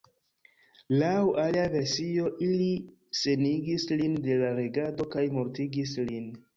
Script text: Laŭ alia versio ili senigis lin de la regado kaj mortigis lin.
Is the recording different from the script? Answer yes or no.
no